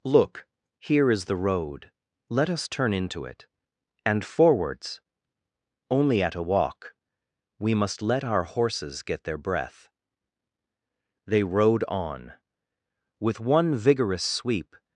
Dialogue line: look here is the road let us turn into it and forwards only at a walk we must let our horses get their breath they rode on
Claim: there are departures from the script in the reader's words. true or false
true